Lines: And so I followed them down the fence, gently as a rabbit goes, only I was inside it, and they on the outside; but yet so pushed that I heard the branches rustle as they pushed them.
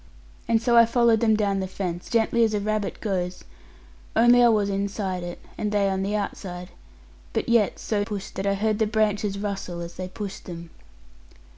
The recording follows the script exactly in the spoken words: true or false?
true